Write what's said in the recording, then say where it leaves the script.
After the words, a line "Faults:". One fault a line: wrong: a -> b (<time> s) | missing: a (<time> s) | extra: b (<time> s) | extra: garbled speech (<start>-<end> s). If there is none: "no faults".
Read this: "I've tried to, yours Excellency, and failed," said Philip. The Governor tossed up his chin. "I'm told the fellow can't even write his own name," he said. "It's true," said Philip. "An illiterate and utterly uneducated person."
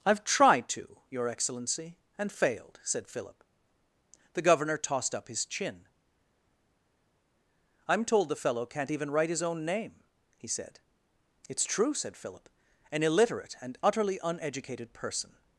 "I've tried to, your Excellency, and failed," said Philip. The Governor tossed up his chin. "I'm told the fellow can't even write his own name," he said. "It's true," said Philip. "An illiterate and utterly uneducated person."
Faults:
wrong: yours -> your (1.1 s)